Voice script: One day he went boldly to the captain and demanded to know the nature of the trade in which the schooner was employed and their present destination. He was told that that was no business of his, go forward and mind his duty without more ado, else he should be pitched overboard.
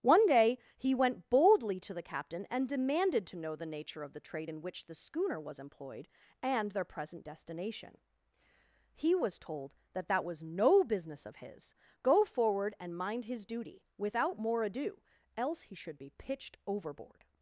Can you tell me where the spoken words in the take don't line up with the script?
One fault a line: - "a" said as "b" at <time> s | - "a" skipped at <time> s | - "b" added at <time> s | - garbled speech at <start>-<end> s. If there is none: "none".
none